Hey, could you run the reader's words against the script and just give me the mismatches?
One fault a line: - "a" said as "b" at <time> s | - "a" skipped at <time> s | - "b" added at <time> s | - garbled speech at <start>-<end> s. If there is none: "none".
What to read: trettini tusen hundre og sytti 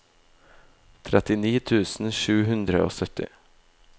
- "sju" added at 2.2 s